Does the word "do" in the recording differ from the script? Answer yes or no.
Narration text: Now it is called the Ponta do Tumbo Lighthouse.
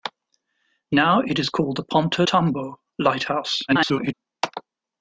yes